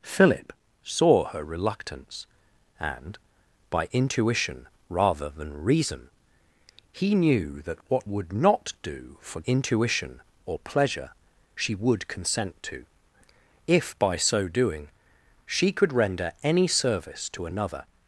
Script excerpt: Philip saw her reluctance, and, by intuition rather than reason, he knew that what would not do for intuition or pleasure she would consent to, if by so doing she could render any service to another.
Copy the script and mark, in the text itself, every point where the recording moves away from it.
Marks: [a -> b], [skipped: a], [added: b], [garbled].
Philip saw her reluctance, and, by intuition rather than reason, he knew that what would not do for intuition or pleasure she would consent to, if by so doing she could render any service to another.